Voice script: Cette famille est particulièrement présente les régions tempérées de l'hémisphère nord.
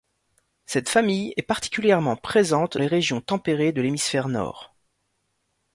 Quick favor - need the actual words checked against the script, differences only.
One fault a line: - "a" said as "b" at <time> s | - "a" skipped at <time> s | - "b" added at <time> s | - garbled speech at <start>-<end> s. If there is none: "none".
none